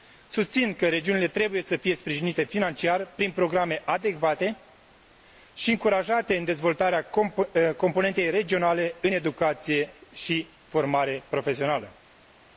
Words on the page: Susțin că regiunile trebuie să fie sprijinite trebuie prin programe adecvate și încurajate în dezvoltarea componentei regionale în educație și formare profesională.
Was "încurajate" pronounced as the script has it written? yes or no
yes